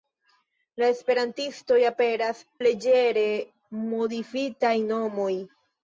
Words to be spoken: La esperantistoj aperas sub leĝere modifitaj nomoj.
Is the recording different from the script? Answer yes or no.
yes